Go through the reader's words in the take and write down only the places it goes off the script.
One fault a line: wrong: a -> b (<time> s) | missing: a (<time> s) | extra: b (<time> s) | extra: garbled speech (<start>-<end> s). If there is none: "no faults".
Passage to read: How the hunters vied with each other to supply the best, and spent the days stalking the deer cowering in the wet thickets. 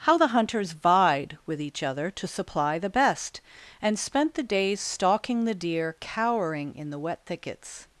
no faults